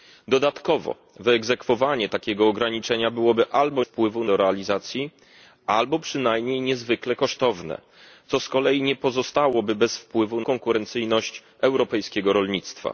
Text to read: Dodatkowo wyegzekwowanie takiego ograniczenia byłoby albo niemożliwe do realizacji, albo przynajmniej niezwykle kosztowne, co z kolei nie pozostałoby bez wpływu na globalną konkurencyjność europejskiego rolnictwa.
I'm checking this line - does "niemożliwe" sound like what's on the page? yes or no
no